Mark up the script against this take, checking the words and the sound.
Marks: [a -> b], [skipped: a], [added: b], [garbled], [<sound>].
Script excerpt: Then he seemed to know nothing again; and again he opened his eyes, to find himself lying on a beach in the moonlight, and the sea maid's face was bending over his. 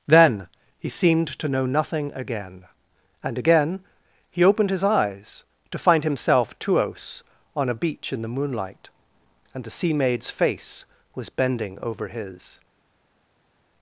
Then he seemed to know nothing again; and again he opened his eyes, to find himself [lying -> tuos] on a beach in the moonlight, and the sea maid's face was bending over his.